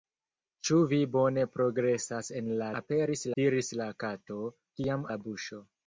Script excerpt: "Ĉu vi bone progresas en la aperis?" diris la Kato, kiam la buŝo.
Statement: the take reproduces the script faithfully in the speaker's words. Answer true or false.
true